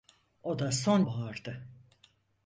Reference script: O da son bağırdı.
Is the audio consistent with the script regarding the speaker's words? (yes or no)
yes